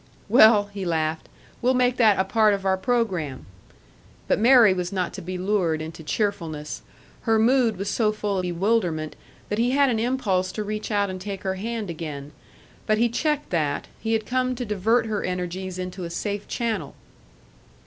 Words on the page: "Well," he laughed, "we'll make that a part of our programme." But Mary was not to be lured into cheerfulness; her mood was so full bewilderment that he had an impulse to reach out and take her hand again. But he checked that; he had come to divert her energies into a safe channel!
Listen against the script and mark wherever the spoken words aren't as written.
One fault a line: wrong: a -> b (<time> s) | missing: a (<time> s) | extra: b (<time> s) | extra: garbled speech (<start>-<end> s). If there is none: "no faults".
no faults